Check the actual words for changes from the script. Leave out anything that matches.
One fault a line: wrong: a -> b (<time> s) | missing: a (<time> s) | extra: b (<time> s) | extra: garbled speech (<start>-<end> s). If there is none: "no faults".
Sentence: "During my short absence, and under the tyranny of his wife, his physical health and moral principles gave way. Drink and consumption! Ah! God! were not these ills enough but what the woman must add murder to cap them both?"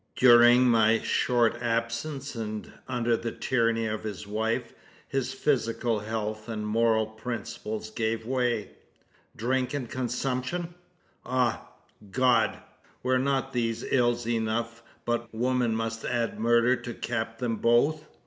missing: what the (15.3 s)